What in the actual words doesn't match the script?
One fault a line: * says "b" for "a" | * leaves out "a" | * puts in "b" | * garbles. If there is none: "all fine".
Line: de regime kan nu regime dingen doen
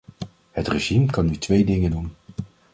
* says "het" for "de"
* says "twee" for "regime"